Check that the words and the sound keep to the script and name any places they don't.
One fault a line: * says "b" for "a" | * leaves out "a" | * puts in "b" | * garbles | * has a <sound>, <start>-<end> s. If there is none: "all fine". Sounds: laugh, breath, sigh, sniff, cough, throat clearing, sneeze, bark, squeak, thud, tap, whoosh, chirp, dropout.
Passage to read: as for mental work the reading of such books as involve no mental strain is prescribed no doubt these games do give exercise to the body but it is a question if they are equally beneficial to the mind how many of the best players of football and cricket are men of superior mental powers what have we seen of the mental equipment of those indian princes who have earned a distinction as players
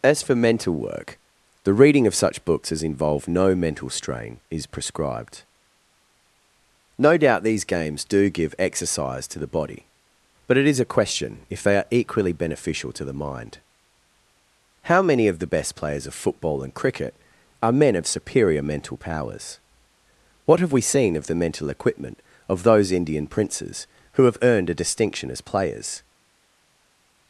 all fine